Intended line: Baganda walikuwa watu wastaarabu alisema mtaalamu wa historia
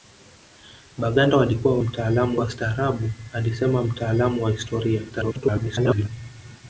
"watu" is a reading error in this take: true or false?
true